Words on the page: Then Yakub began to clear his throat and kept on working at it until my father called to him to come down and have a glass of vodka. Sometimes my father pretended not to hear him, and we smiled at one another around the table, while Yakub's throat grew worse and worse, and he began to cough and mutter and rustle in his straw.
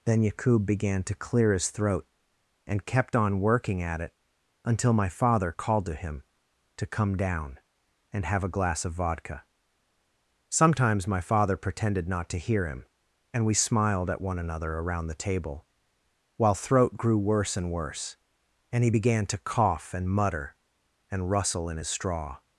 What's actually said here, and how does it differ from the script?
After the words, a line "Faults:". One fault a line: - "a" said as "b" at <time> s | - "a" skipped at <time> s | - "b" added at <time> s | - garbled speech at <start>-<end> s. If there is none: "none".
Then Yakub began to clear his throat and kept on working at it until my father called to him to come down and have a glass of vodka. Sometimes my father pretended not to hear him, and we smiled at one another around the table, while throat grew worse and worse, and he began to cough and mutter and rustle in his straw.
Faults:
- "Yakub's" skipped at 16.5 s